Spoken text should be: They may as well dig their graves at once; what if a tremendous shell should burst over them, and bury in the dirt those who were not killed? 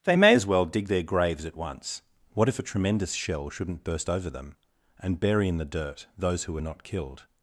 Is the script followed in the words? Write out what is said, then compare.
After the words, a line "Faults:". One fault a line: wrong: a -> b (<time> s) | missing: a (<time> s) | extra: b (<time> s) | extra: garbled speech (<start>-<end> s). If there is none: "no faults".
They may as well dig their graves at once; what if a tremendous shell shouldn't burst over them, and bury in the dirt those who were not killed?
Faults:
wrong: should -> shouldn't (3.5 s)